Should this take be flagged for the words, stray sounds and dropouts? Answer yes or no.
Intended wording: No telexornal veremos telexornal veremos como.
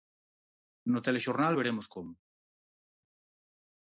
yes